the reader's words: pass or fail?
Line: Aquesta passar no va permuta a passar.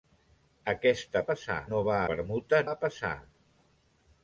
pass